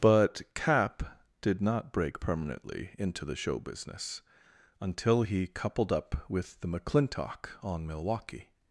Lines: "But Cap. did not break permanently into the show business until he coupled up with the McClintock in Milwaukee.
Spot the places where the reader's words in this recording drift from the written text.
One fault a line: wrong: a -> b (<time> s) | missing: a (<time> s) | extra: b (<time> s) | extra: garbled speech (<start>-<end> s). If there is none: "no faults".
wrong: in -> on (7.6 s)